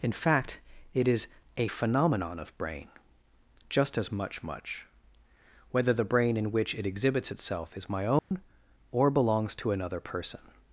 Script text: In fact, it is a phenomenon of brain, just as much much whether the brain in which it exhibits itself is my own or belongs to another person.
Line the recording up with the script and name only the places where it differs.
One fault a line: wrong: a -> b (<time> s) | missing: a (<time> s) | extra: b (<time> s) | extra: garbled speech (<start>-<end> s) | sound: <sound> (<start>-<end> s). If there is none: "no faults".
sound: dropout (8.2-8.3 s)